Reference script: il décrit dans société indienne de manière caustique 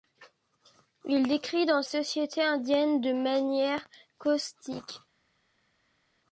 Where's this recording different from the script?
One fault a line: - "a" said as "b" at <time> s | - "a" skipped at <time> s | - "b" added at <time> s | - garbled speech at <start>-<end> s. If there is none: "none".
none